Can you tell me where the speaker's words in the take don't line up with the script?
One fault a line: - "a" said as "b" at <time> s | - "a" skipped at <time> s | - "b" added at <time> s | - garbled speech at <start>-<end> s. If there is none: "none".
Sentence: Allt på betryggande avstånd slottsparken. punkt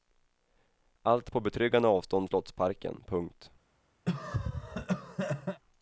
none